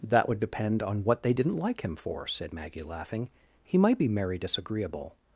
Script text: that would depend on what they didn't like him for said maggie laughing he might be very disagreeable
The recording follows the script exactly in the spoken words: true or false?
false